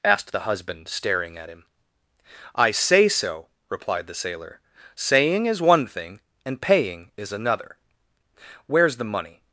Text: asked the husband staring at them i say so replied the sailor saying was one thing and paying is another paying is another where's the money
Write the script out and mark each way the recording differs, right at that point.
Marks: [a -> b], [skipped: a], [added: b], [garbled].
asked the husband staring at [them -> him] i say so replied the sailor saying [was -> is] one thing and paying is another [skipped: paying is another] where's the money